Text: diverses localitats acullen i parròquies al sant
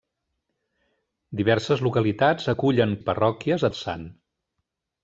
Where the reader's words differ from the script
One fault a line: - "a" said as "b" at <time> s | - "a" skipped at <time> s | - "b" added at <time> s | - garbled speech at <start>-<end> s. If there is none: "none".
none